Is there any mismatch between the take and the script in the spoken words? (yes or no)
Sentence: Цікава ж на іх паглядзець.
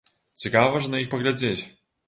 no